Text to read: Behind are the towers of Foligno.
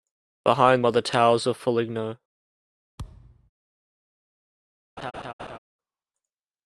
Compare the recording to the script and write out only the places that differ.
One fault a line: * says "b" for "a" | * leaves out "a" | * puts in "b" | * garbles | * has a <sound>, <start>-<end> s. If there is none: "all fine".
* has a thud, 3.0-3.5 s
* has a laugh, 5.0-5.6 s